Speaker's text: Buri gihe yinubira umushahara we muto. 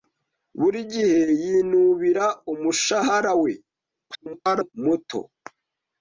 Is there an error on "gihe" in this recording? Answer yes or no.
no